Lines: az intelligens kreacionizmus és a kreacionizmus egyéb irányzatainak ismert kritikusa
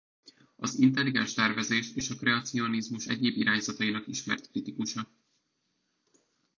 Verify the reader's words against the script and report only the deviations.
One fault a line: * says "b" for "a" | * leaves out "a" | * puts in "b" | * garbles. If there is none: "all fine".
* says "tervezés" for "kreacionizmus"